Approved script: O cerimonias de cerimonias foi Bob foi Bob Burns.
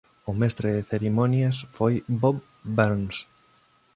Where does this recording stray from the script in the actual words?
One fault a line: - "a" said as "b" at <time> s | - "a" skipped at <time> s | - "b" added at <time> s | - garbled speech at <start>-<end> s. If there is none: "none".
- "cerimonias" said as "mestre" at 0.4 s
- "foi Bob" skipped at 2.4 s